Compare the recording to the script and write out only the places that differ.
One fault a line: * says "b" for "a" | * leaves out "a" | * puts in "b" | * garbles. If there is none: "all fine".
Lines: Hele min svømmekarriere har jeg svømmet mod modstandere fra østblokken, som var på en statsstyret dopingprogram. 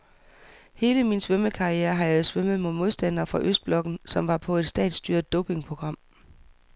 * says "et" for "en"